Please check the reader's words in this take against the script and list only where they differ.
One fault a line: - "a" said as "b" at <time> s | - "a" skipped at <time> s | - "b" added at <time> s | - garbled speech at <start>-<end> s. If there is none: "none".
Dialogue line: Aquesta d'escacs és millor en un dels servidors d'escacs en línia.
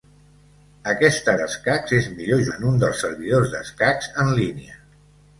none